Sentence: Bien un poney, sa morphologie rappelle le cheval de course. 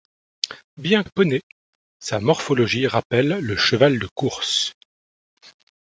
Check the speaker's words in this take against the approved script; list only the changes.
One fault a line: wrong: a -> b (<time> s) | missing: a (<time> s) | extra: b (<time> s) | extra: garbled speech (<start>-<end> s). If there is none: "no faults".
no faults